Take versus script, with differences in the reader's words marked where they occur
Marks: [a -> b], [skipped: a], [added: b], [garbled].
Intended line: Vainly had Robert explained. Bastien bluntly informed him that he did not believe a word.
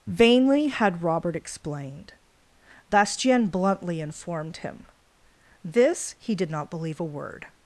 Vainly had Robert explained. Bastien bluntly informed him [that -> this] he did not believe a word.